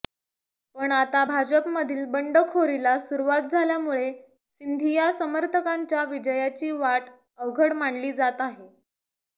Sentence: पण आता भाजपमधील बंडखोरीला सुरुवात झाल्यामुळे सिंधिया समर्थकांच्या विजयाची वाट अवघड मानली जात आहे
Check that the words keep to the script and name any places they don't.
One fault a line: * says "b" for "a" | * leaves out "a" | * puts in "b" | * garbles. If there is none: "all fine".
all fine